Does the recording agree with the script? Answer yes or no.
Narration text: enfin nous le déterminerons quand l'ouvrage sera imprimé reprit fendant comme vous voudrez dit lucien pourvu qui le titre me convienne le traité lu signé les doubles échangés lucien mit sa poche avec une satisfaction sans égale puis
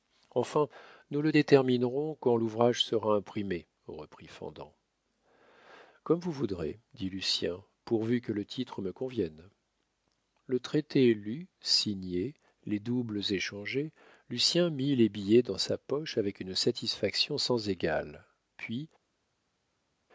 no